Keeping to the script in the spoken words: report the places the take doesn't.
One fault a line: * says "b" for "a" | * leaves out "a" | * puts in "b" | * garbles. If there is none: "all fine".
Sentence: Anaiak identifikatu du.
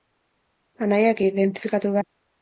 all fine